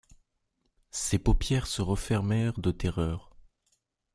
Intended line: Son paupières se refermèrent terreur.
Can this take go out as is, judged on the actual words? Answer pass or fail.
fail